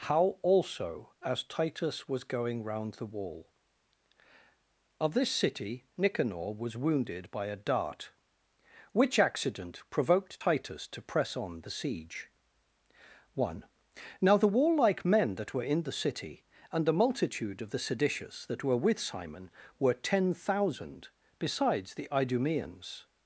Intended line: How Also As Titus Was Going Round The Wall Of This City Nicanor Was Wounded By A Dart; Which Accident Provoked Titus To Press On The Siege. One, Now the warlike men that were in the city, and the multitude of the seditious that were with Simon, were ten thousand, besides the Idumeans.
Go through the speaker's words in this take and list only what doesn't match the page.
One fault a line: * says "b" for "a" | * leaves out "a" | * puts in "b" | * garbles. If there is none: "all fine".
all fine